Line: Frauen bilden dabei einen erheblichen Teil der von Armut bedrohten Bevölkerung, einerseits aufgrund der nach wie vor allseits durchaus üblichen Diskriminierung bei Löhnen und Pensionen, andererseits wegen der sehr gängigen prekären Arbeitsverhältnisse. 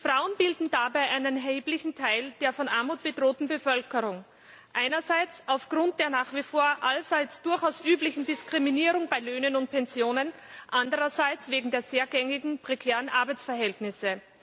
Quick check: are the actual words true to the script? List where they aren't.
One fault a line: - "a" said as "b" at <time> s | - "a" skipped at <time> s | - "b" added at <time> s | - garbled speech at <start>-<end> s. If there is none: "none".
none